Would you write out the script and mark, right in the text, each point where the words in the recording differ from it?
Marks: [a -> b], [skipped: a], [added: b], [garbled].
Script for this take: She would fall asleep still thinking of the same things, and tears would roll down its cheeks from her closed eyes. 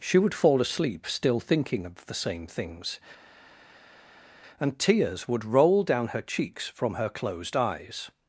She would fall asleep still thinking of the same things, and tears would roll down [its -> her] cheeks from her closed eyes.